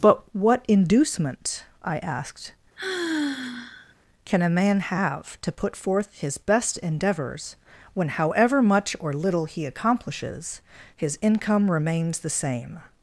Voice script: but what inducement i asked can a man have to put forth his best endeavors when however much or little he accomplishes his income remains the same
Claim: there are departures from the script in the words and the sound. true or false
true